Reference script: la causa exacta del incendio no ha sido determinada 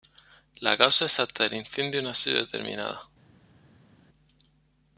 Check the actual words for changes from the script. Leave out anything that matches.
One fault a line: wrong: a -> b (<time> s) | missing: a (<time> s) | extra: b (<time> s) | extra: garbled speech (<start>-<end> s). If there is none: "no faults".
no faults